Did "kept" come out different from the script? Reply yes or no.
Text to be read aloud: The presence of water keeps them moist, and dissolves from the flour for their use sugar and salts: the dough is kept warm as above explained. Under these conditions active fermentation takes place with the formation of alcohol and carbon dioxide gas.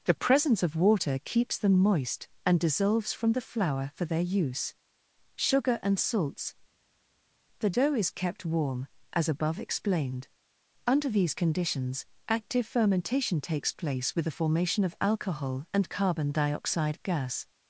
no